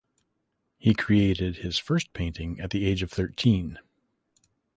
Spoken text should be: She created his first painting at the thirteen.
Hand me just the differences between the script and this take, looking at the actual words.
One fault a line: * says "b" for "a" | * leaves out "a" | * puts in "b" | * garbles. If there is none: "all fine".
* says "He" for "She"
* puts in "age of"